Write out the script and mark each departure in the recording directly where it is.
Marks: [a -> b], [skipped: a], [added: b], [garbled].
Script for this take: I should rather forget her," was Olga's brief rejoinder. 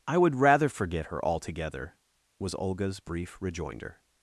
I [should -> would] rather forget her," [added: altogether] was Olga's brief rejoinder.